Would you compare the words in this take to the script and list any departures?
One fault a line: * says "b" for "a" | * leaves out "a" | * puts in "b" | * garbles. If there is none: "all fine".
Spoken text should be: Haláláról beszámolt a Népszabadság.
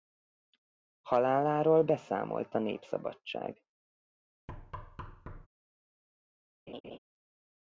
all fine